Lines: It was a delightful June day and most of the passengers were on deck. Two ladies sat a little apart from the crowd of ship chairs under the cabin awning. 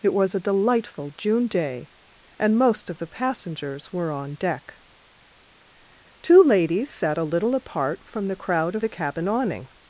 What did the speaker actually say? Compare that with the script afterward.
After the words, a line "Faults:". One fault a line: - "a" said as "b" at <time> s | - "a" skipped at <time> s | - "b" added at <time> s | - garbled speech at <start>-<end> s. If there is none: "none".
It was a delightful June day and most of the passengers were on deck. Two ladies sat a little apart from the crowd of the cabin awning.
Faults:
- "ship chairs under" skipped at 8.8 s